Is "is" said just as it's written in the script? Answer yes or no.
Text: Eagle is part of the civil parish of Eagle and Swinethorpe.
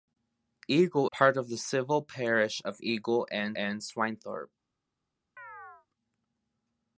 no